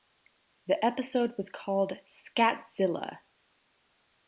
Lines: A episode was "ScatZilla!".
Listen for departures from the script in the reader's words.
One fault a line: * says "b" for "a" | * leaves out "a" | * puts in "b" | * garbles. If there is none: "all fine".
* says "The" for "A"
* puts in "called"